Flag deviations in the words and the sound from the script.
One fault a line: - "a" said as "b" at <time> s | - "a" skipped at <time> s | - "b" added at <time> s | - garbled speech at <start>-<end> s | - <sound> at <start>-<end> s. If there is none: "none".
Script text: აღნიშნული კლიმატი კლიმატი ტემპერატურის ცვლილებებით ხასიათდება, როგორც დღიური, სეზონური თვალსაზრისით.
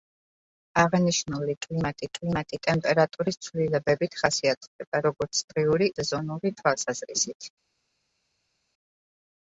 none